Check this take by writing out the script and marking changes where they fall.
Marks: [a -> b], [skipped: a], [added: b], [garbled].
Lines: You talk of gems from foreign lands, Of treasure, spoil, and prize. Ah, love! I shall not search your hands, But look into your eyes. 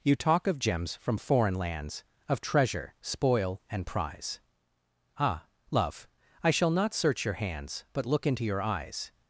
You talk of gems from foreign lands, Of treasure, spoil, and prize. Ah, love! I shall not search your hands, But look into your eyes.